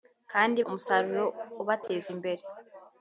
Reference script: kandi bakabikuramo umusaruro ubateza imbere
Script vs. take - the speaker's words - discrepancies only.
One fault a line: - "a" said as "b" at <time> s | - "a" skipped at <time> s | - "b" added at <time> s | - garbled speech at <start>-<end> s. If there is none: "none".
- "bakabikuramo" skipped at 0.6 s